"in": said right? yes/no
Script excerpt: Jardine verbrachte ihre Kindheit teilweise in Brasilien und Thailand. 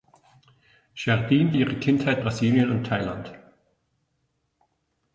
no